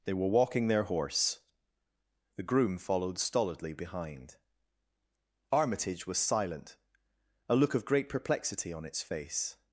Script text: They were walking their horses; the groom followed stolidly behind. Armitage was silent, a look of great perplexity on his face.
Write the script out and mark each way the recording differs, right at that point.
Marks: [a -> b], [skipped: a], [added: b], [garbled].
They were walking their [horses; -> horse] the groom followed stolidly behind. Armitage was silent, a look of great perplexity on [his -> its] face.